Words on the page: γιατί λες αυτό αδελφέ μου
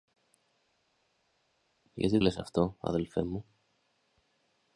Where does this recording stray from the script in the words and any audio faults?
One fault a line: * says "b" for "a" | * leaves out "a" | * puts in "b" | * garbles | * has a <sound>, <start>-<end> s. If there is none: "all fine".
all fine